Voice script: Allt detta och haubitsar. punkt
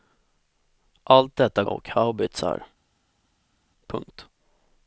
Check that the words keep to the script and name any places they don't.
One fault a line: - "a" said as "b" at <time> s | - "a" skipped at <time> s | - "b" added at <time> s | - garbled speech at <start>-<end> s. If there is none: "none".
none